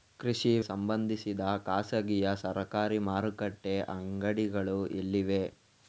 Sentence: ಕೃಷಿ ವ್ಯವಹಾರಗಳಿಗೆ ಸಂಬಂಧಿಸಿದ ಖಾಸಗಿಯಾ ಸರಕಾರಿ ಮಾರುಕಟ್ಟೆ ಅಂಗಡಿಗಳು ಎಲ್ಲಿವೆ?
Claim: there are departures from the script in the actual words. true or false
true